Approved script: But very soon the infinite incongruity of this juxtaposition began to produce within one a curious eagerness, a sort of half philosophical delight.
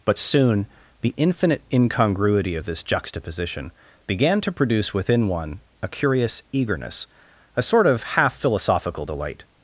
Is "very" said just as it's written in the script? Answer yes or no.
no